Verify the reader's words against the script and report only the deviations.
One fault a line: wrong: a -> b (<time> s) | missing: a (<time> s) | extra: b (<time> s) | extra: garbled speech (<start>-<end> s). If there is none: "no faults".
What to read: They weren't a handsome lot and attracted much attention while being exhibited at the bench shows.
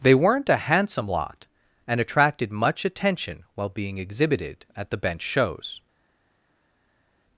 no faults